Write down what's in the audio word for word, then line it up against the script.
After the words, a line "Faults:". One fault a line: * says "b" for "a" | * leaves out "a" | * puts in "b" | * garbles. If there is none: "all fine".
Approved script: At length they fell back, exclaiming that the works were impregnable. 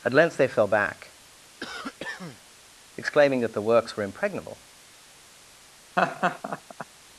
At length they fell back, exclaiming that the works were impregnable.
Faults:
all fine